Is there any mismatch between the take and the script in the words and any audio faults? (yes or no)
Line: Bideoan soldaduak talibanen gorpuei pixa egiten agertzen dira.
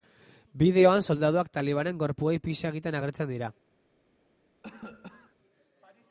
yes